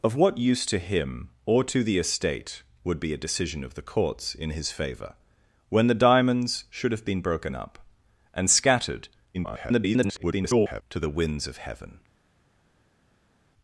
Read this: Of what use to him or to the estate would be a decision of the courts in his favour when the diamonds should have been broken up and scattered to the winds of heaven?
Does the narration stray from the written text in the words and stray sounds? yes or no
yes